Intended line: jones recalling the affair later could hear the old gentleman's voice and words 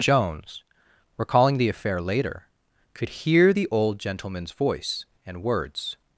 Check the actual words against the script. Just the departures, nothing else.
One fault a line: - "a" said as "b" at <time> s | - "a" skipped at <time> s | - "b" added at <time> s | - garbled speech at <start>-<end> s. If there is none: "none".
none